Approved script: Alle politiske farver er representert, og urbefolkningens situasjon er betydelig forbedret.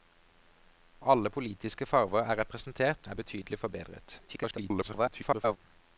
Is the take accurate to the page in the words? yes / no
no